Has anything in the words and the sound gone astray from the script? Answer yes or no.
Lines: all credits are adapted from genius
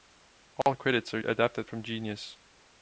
yes